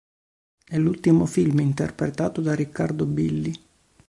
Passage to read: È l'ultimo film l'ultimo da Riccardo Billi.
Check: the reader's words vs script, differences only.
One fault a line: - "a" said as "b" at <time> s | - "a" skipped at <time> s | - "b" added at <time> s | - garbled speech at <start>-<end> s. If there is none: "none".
- "l'ultimo" said as "interpretato" at 1.6 s